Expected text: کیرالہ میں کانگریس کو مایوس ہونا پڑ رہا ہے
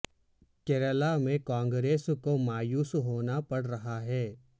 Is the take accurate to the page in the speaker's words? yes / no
yes